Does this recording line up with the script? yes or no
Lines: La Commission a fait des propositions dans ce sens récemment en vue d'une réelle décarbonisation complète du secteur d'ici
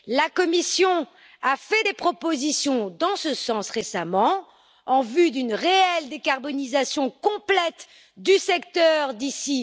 yes